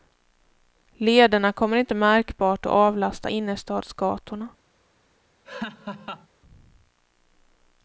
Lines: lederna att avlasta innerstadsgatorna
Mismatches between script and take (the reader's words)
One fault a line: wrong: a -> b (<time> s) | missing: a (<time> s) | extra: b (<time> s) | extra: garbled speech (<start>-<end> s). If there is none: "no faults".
extra: kommer inte märkbart (1.5 s)